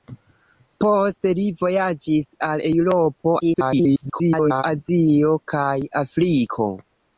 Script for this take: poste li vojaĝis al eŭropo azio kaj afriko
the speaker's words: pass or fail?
fail